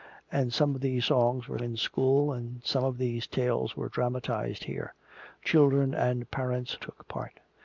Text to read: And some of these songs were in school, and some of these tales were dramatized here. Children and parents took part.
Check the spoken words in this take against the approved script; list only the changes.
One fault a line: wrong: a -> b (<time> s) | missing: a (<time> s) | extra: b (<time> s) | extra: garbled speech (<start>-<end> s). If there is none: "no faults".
no faults